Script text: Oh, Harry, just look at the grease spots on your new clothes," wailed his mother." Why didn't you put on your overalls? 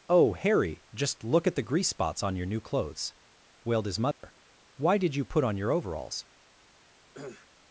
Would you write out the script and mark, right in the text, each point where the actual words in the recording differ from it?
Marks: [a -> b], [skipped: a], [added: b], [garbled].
Oh, Harry, just look at the grease spots on your new clothes," wailed his mother." Why [didn't -> did] you put on your overalls?